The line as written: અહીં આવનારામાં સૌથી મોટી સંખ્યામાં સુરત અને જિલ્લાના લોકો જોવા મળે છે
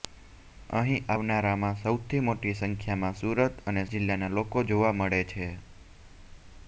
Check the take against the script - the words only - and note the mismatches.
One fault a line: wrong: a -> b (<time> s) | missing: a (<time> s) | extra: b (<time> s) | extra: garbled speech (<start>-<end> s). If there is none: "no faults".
no faults